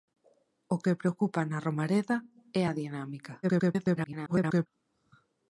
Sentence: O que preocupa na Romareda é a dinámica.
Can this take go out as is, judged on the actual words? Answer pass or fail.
fail